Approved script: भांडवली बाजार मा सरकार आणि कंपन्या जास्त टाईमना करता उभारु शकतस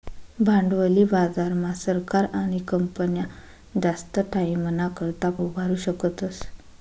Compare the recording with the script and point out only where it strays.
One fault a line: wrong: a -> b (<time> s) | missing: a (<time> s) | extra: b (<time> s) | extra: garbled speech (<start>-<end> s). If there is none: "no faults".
no faults